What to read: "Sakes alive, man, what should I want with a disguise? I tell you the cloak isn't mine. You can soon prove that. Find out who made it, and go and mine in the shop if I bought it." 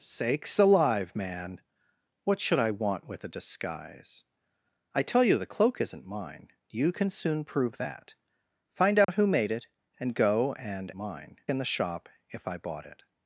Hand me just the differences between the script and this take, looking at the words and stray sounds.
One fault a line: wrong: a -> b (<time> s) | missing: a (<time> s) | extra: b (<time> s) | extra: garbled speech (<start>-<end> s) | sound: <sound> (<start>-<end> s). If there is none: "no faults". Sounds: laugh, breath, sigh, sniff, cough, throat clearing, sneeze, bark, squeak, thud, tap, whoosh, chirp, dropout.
sound: dropout (9.0-9.1 s)